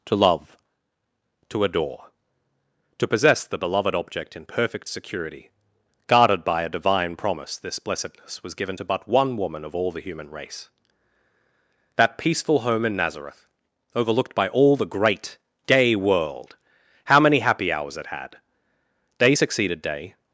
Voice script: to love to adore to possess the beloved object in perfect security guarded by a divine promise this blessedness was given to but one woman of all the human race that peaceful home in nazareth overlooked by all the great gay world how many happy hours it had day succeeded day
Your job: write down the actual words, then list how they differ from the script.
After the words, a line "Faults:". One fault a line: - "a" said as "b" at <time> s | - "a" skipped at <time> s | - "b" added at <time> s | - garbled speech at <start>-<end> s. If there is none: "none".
to love to adore to possess the beloved object in perfect security guarded by a divine promise this blessedness was given to but one woman of all the human race that peaceful home in nazareth overlooked by all the great gay world how many happy hours it had day succeeded day
Faults:
none